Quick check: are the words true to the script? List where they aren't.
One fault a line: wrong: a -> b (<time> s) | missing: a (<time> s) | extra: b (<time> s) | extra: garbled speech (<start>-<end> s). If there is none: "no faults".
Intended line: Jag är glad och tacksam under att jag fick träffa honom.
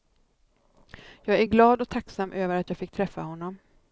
wrong: under -> över (2.3 s)